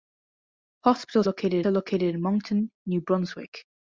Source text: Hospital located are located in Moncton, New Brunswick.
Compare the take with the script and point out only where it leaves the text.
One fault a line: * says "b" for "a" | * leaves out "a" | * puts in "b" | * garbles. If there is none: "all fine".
all fine